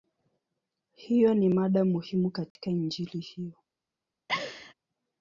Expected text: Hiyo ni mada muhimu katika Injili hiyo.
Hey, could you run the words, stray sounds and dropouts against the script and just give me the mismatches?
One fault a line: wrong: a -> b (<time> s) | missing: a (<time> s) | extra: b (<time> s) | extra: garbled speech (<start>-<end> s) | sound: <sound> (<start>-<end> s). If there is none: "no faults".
sound: dropout (2.5-2.6 s)
sound: laugh (4.3-4.7 s)